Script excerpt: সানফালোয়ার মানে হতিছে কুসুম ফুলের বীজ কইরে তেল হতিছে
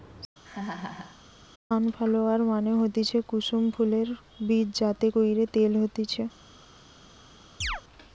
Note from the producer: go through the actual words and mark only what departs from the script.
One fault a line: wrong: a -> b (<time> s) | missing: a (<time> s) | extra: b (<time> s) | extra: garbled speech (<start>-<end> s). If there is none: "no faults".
extra: যাতে (4.8 s)